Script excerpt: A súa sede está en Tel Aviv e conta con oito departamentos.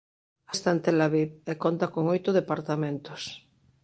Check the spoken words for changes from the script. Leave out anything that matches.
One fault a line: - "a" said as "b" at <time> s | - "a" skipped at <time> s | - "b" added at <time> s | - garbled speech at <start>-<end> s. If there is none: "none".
- "súa sede" skipped at 0.5 s